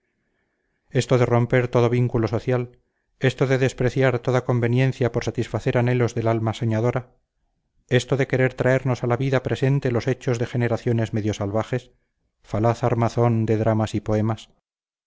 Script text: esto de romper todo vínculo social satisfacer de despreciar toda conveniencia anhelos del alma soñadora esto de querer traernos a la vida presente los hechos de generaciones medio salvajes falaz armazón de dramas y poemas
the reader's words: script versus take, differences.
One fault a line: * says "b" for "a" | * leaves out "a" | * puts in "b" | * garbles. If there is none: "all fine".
* says "esto" for "satisfacer"
* puts in "por satisfacer"